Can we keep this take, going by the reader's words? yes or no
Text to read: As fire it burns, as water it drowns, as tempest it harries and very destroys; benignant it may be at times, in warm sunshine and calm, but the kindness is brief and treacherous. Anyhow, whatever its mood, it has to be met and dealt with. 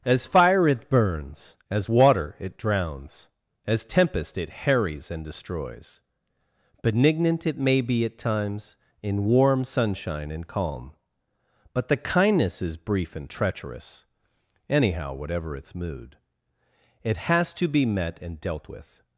no